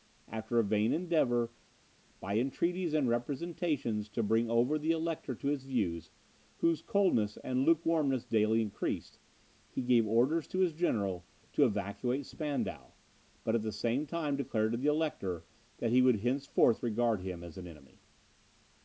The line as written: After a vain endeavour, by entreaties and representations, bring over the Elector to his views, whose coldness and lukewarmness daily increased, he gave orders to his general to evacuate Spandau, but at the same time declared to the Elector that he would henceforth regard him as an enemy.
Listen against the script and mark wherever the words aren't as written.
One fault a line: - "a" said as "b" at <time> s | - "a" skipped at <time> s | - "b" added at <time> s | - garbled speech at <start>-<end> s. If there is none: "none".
- "to" added at 4.1 s